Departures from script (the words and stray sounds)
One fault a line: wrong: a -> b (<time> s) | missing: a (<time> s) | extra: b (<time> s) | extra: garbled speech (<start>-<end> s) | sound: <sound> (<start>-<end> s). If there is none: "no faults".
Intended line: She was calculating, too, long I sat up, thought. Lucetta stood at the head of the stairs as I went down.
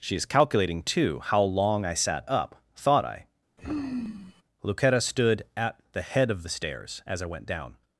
wrong: was -> is (0.1 s)
extra: how (1.2 s)
extra: I (3.0 s)
sound: sigh (3.6-4.4 s)